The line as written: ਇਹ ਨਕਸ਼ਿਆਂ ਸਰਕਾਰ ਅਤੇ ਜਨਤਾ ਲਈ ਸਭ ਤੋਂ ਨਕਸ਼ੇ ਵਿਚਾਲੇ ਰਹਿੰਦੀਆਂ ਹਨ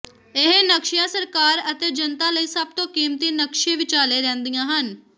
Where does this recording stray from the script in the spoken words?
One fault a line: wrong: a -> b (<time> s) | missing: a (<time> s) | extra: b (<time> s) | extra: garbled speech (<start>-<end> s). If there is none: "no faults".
extra: ਕੀਮਤੀ (2.9 s)